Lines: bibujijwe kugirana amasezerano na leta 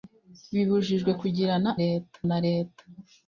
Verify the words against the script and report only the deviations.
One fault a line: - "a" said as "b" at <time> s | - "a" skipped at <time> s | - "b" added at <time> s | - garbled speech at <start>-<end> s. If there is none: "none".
- "amasezerano" said as "leta" at 1.8 s